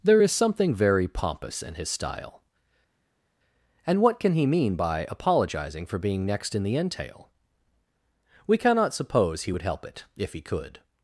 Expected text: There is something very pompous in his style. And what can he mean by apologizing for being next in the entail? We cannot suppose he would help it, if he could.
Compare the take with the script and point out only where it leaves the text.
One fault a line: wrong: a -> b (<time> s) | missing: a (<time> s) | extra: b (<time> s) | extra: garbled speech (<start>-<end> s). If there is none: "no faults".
no faults